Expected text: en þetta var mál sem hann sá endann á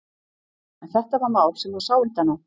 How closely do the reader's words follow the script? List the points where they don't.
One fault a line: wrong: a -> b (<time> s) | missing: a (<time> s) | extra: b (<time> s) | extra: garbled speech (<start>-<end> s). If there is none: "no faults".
no faults